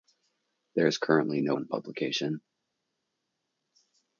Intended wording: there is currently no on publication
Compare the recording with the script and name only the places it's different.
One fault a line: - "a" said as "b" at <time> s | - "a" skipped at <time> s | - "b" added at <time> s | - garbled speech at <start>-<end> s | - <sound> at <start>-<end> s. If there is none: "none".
none